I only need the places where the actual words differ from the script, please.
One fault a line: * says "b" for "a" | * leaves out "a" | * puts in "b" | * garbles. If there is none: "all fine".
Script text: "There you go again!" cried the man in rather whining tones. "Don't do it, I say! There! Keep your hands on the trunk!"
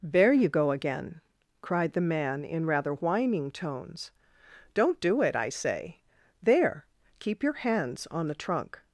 all fine